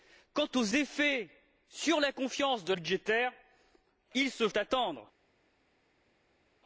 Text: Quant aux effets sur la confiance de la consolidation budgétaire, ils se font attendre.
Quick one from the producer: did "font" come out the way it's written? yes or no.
no